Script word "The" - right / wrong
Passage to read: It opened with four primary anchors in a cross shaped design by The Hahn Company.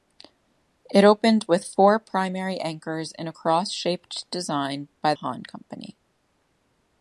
wrong